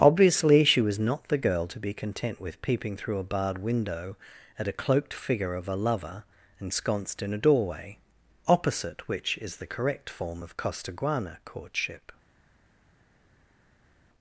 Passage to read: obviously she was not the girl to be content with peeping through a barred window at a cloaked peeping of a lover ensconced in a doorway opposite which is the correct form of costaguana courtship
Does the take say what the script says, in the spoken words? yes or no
no